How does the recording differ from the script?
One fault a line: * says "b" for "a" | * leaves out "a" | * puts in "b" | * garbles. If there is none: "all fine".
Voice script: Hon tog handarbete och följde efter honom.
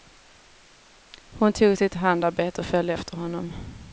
* puts in "sitt"